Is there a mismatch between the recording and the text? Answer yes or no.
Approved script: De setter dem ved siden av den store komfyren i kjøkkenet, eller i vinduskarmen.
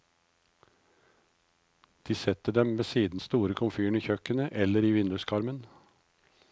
yes